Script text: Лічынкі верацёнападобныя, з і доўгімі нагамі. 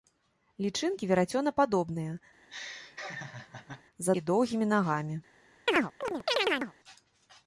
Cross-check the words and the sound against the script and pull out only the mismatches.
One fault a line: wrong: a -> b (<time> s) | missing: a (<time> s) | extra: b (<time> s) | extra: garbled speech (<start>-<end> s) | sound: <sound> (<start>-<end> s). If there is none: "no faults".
sound: laugh (2.4-3.8 s)
sound: chirp (5.7-6.7 s)